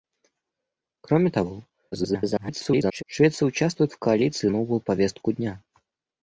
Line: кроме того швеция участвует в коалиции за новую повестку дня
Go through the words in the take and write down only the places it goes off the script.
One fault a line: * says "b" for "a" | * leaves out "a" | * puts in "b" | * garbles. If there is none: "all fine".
* garbles
* leaves out "за"